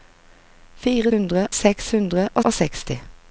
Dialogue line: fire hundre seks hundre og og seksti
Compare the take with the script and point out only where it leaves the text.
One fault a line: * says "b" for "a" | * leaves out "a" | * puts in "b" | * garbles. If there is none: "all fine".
all fine